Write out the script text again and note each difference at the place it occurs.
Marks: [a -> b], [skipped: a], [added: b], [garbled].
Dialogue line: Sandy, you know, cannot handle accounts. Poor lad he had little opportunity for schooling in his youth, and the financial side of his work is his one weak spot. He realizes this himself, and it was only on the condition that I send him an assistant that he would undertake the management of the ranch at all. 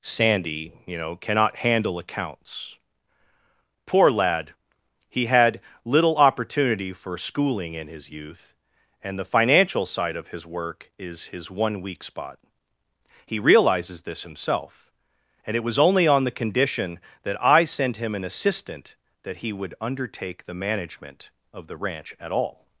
Sandy, you know, cannot handle accounts. Poor lad he had little opportunity for schooling in his youth, and the financial side of his work is his one weak spot. He realizes this himself, and it was only on the condition that I send him an assistant that he would undertake the management of the ranch at all.